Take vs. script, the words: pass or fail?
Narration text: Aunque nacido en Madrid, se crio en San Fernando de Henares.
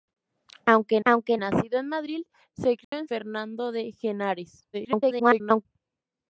fail